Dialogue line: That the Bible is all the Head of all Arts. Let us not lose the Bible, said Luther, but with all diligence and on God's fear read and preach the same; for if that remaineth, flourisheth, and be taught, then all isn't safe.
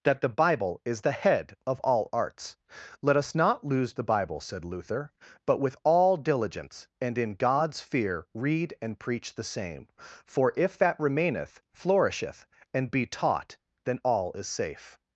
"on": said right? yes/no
no